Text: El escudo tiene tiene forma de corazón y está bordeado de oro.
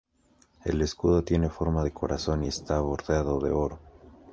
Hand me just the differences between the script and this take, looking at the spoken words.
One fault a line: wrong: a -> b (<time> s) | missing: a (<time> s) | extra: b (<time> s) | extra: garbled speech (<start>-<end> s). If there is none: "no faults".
missing: tiene (1.5 s)